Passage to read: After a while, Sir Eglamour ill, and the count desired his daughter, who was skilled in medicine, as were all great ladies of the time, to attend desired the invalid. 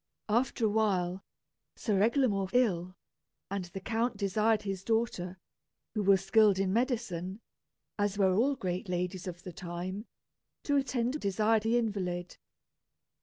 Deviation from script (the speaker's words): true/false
false